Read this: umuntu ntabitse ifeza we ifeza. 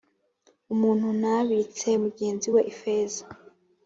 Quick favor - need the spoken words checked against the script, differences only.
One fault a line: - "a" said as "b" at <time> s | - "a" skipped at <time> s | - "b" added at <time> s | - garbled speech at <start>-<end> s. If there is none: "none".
- "ifeza" said as "mugenzi" at 2.0 s